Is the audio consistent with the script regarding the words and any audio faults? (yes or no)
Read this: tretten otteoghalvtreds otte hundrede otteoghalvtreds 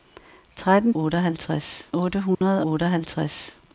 no